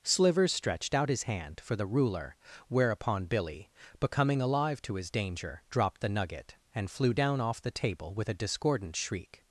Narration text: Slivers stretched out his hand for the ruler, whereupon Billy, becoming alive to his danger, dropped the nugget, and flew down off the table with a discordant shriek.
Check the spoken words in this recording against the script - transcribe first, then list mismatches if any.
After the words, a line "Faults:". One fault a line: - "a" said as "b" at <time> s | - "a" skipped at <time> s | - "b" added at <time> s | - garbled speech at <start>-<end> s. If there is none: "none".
Slivers stretched out his hand for the ruler, whereupon Billy, becoming alive to his danger, dropped the nugget, and flew down off the table with a discordant shriek.
Faults:
none